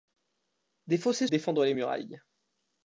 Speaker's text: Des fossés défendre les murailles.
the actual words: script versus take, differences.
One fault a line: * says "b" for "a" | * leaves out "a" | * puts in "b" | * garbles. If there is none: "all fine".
all fine